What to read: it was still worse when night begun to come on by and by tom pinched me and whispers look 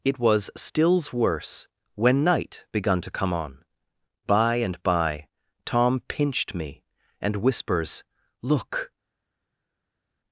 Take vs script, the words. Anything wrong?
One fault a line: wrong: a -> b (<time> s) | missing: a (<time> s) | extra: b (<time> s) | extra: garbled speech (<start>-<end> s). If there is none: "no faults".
wrong: still -> stills (0.6 s)